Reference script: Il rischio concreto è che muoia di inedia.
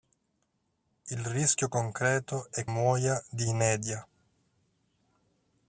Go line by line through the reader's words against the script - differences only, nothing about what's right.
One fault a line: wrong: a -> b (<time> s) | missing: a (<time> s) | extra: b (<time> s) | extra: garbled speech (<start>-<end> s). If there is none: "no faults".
missing: che (2.6 s)